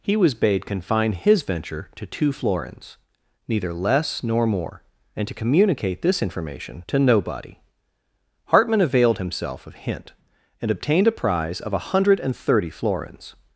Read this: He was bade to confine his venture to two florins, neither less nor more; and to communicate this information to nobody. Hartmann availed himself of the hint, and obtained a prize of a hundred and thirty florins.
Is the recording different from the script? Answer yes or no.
yes